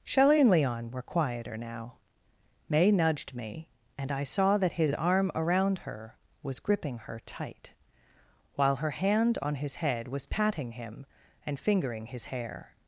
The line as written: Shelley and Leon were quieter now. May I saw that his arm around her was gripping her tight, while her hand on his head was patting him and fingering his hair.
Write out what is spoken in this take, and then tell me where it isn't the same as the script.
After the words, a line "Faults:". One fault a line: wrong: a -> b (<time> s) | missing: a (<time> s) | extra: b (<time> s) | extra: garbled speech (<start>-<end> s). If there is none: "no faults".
Shelley and Leon were quieter now. May nudged me, and I saw that his arm around her was gripping her tight, while her hand on his head was patting him and fingering his hair.
Faults:
extra: nudged me and (2.9 s)